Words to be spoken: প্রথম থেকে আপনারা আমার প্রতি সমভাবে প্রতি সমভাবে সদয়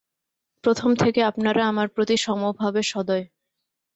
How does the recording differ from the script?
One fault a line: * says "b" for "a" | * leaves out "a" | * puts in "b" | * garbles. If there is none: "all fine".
* leaves out "প্রতি সমভাবে"